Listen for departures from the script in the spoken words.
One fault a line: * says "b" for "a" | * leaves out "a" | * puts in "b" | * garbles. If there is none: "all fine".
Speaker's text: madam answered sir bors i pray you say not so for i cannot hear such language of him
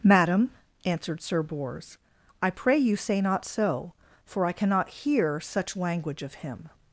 all fine